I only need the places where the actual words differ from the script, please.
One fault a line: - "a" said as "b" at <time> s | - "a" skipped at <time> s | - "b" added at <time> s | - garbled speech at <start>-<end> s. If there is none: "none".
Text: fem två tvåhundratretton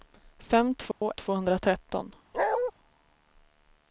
none